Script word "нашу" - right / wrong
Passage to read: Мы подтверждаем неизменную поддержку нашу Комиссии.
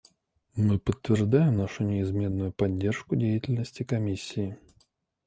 wrong